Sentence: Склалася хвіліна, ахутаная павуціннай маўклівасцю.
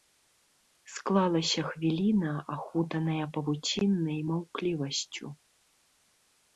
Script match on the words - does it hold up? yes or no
yes